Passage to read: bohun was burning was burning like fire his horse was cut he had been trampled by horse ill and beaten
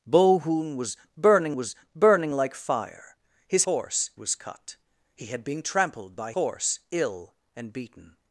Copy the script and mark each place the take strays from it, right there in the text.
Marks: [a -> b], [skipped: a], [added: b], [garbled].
bohun was burning was burning like fire his horse was cut he had been trampled by horse ill and beaten